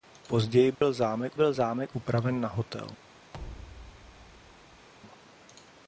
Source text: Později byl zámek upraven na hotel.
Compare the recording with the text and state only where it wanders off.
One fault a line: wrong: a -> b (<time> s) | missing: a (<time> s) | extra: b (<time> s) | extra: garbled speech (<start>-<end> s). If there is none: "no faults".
extra: byl zámek (1.3 s)